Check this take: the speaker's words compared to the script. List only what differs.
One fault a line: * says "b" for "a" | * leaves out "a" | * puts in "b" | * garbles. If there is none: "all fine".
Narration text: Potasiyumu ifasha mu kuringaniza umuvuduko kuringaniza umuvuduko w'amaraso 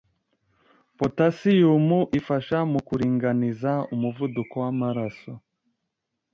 * leaves out "kuringaniza umuvuduko"